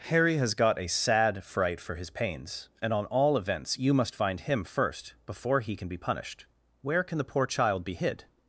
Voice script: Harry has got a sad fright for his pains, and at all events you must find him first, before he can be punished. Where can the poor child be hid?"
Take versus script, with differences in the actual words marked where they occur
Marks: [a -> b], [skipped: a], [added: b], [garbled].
Harry has got a sad fright for his pains, and [at -> on] all events you must find him first, before he can be punished. Where can the poor child be hid?"